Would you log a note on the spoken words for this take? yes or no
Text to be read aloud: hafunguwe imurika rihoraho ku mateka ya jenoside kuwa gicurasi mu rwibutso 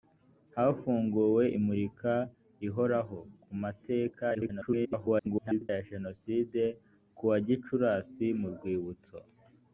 yes